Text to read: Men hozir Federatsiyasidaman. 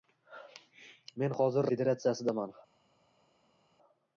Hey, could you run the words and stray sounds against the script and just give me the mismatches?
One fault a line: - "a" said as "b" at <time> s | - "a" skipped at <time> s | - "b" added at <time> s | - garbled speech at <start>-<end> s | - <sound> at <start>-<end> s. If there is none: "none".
none